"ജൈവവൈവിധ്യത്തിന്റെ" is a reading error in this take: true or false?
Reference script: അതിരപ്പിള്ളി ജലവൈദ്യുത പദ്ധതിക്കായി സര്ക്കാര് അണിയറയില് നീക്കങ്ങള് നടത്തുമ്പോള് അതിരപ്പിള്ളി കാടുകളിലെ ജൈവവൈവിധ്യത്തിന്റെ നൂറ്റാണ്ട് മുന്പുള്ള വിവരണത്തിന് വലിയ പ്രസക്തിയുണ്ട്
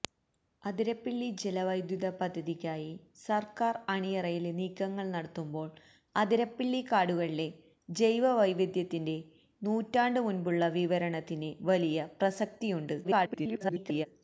false